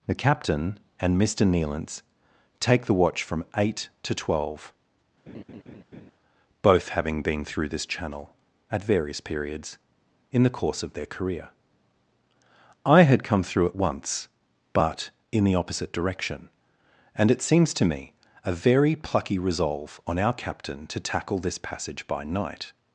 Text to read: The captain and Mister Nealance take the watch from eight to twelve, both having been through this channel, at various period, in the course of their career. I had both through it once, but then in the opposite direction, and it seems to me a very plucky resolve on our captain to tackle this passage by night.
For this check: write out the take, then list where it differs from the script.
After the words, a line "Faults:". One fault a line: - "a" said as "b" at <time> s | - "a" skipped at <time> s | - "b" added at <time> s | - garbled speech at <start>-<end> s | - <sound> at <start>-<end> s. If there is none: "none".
The captain and Mister Nealance take the watch from eight to twelve, both having been through this channel, at various periods, in the course of their career. I had come through it once, but in the opposite direction, and it seems to me a very plucky resolve on our captain to tackle this passage by night.
Faults:
- laugh at 5.3-6.1 s
- "period" said as "periods" at 9.2 s
- "both" said as "come" at 13.2 s
- "then" skipped at 15.1 s